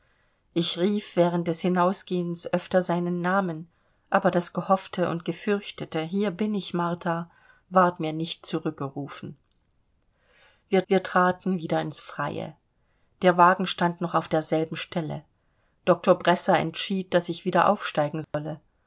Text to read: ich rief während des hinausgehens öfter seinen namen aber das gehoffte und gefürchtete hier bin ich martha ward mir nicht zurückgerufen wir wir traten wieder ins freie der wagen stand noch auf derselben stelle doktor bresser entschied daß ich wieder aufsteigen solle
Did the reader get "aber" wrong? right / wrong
right